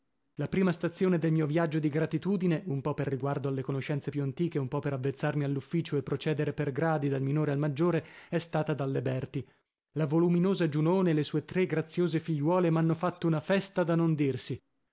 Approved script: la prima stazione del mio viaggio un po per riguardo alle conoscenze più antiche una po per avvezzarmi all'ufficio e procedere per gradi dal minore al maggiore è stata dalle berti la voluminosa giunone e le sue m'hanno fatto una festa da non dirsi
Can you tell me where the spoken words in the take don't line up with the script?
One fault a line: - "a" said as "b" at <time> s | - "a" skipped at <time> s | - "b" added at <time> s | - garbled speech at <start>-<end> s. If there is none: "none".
- "di gratitudine" added at 1.8 s
- "una" said as "un" at 4.6 s
- "tre graziose figliuole" added at 11.4 s